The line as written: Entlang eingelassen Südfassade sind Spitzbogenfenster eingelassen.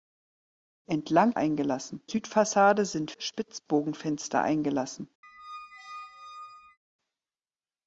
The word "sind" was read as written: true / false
true